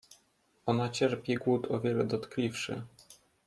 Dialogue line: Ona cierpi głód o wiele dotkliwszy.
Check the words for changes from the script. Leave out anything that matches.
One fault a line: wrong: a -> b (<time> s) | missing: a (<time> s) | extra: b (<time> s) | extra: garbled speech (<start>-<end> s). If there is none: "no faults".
no faults